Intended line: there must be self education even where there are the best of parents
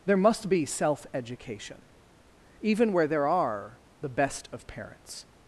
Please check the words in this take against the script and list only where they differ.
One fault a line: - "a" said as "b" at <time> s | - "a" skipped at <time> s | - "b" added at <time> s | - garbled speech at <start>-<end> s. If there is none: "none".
none